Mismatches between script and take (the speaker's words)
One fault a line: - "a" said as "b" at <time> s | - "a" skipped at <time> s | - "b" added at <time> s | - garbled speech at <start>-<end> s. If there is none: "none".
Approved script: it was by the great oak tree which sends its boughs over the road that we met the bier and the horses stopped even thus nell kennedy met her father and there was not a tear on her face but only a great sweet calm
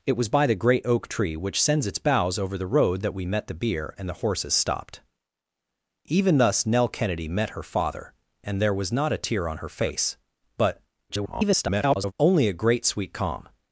- garbled speech at 11.1-12.1 s